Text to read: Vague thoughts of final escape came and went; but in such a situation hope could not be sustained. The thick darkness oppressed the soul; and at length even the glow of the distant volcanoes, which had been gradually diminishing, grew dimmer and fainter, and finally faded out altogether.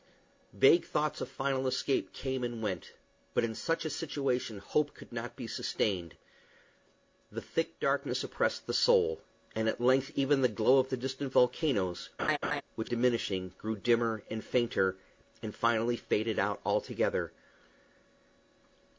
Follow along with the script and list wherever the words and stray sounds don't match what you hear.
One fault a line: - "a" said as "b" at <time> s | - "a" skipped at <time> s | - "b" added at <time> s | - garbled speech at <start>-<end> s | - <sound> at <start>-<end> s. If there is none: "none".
- laugh at 12.2-12.6 s
- "had been gradually" skipped at 12.9 s